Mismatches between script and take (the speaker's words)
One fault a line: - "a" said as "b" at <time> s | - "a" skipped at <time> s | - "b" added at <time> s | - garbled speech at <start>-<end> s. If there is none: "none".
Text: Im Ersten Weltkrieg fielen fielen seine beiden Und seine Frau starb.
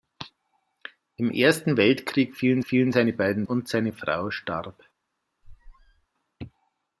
none